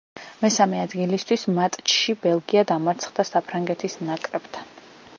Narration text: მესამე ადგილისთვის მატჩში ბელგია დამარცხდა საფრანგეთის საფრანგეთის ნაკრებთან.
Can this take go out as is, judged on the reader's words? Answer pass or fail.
fail